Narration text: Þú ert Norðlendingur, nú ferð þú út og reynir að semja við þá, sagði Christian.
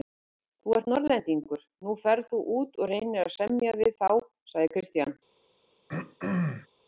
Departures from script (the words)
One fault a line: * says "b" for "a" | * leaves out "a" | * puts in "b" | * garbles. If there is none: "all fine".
all fine